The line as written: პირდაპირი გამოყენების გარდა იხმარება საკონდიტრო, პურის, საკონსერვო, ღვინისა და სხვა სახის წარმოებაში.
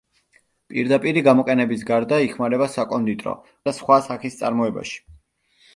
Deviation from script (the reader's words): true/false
true